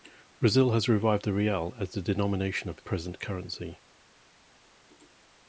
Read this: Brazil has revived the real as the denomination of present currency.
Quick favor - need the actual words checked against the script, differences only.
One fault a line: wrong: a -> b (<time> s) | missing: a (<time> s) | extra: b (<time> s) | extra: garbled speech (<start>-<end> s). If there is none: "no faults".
no faults